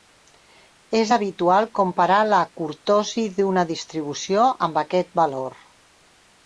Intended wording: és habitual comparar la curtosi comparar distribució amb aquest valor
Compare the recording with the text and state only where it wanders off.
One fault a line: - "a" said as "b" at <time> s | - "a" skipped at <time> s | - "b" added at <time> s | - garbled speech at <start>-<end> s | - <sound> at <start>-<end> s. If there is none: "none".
- "comparar" said as "d'una" at 3.4 s